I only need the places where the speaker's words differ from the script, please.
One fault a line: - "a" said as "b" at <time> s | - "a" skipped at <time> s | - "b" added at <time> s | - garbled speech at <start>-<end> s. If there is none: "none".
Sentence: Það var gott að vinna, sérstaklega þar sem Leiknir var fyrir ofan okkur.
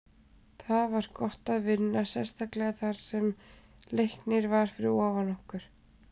none